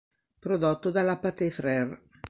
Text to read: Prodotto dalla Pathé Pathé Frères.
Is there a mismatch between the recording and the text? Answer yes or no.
yes